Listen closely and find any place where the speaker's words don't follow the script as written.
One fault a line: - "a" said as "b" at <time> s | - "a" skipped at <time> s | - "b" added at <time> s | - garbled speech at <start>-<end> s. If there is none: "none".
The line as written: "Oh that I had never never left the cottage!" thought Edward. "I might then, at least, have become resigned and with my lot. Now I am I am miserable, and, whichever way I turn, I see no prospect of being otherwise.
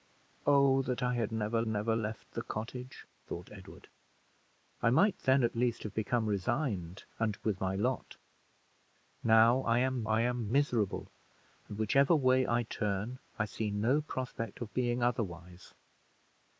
none